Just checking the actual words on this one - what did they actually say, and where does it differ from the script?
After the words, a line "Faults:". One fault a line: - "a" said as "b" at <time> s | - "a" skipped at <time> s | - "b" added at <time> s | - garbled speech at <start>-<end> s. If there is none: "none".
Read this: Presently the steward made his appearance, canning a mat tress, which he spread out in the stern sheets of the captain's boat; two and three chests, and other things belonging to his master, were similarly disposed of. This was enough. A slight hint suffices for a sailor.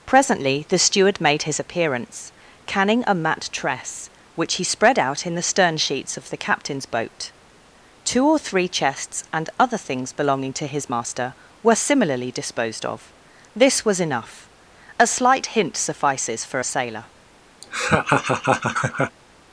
Presently the steward made his appearance, canning a mat tress, which he spread out in the stern sheets of the captain's boat; two or three chests, and other things belonging to his master, were similarly disposed of. This was enough. A slight hint suffices for a sailor.
Faults:
- "and" said as "or" at 8.3 s